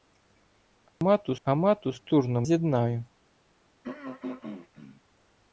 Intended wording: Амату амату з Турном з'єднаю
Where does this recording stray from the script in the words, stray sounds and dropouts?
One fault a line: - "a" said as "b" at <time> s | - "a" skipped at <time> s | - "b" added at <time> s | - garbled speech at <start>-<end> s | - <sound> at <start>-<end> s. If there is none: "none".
- dropout at 0.9-1.0 s
- throat clearing at 3.8-5.0 s